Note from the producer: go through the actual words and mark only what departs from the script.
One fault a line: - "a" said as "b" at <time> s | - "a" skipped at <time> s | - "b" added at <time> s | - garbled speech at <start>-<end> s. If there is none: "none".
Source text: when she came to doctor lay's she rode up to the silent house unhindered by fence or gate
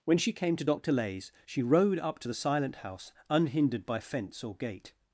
none